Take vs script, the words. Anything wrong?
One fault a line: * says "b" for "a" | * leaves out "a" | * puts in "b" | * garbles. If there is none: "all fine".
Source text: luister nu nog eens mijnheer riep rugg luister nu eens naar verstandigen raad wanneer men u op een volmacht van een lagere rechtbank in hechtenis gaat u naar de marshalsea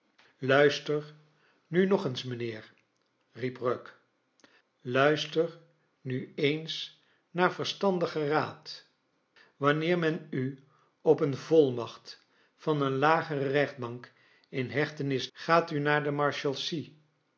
all fine